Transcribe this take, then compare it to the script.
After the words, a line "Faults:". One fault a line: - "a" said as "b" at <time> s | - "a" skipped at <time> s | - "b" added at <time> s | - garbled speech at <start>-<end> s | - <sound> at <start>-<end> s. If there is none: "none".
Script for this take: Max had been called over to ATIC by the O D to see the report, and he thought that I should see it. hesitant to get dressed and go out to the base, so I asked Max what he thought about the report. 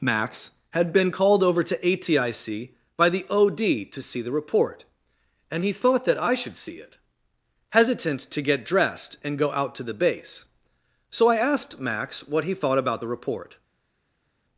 Max had been called over to ATIC by the O D to see the report, and he thought that I should see it. hesitant to get dressed and go out to the base, so I asked Max what he thought about the report.
Faults:
none